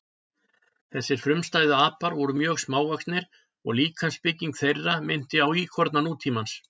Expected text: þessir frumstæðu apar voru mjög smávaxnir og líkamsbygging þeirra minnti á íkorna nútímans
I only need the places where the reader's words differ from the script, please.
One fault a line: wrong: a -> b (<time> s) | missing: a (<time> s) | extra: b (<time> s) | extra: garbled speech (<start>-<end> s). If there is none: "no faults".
no faults